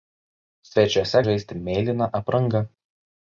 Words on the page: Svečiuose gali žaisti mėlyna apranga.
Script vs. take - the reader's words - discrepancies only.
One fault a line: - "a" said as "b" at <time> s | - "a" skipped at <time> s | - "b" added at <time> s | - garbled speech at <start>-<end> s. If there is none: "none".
- "gali" skipped at 1.2 s